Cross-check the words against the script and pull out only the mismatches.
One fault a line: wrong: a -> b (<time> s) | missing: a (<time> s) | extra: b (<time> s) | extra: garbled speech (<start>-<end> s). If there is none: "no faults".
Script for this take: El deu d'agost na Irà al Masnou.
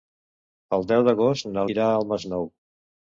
no faults